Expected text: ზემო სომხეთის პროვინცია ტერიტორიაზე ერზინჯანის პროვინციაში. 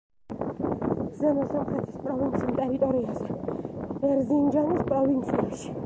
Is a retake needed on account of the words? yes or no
no